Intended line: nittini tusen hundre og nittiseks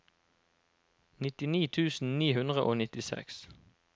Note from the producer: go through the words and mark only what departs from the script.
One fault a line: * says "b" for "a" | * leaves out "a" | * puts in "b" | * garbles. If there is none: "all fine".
* puts in "ni"